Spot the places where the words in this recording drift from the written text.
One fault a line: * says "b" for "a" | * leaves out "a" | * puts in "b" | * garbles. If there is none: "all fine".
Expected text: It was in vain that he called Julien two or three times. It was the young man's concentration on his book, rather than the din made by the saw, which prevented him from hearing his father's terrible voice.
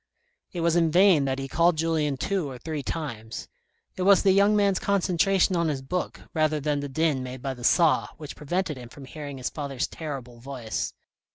all fine